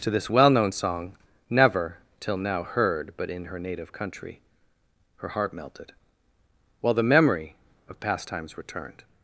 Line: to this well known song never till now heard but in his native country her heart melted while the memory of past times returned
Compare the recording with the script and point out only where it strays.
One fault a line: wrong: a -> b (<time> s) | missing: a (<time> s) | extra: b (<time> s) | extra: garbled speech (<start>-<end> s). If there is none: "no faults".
wrong: his -> her (3.4 s)